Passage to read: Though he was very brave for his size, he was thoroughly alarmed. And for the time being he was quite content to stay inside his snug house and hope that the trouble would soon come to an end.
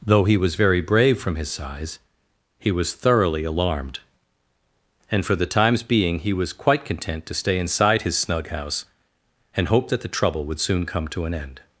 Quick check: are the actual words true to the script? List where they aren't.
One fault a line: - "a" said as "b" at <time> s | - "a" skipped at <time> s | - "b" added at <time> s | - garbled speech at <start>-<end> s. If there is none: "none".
- "for" said as "from" at 1.2 s
- "time" said as "times" at 5.5 s